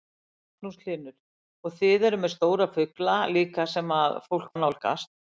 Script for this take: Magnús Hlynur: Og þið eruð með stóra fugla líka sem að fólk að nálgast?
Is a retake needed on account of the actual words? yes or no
no